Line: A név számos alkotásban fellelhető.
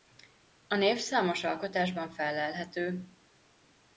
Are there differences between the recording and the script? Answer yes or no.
no